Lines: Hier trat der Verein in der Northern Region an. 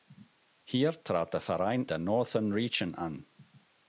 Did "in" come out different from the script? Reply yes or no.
yes